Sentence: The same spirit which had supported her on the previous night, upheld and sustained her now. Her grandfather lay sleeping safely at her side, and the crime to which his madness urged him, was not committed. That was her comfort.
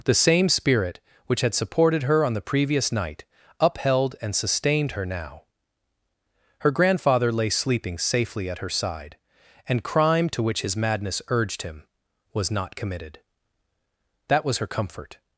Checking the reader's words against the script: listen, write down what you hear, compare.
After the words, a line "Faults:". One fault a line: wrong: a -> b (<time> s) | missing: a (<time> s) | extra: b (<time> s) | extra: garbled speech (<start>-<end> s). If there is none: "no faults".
The same spirit which had supported her on the previous night, upheld and sustained her now. Her grandfather lay sleeping safely at her side, and crime to which his madness urged him, was not committed. That was her comfort.
Faults:
missing: the (9.8 s)